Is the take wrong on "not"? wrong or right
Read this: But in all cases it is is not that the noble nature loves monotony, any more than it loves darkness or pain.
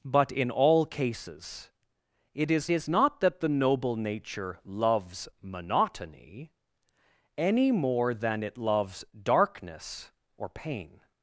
right